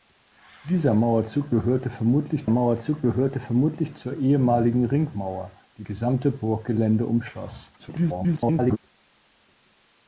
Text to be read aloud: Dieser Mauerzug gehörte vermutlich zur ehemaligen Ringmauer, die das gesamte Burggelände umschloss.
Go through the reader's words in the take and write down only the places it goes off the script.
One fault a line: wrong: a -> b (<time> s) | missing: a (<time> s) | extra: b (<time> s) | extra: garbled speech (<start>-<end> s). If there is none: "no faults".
extra: Mauerzug gehörte vermutlich (2.5 s)
missing: das (5.9 s)
extra: garbled speech (7.8-8.8 s)